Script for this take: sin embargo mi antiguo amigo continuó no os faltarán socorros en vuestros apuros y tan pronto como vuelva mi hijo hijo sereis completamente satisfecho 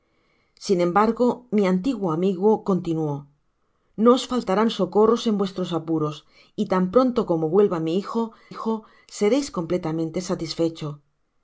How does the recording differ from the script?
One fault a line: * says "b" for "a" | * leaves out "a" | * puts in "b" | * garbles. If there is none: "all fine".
all fine